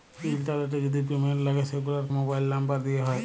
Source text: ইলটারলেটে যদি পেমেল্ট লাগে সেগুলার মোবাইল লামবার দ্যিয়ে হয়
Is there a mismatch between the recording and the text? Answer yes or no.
no